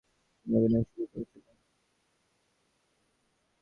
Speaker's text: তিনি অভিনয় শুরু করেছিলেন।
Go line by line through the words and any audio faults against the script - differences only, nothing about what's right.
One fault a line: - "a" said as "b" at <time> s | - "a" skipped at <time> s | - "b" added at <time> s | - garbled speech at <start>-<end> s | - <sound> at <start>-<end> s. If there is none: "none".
none